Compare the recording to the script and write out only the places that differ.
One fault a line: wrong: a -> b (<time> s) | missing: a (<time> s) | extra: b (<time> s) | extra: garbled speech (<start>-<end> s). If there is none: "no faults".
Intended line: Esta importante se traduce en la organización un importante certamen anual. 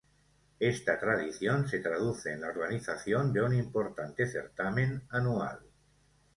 wrong: importante -> tradición (1.0 s)
extra: de (3.3 s)